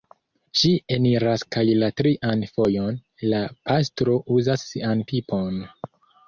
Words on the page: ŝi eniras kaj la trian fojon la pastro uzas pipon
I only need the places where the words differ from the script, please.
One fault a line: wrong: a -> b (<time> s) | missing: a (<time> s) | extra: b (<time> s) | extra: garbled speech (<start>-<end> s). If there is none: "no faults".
extra: sian (4.7 s)